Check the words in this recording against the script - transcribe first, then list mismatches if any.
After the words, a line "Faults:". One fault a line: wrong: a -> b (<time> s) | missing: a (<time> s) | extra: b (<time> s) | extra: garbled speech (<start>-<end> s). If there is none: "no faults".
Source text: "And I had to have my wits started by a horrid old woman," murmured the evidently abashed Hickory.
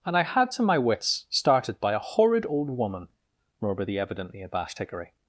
"And I had to my wits started by a horrid old woman," murmured the evidently abashed Hickory.
Faults:
missing: have (0.6 s)